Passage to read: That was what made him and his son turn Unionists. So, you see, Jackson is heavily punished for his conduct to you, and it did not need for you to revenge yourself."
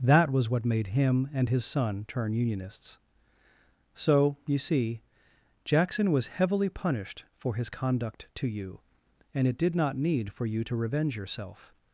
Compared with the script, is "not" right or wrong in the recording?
right